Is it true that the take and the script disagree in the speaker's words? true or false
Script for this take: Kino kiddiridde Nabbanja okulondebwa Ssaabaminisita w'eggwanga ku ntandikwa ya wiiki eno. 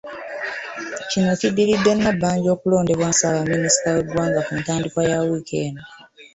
false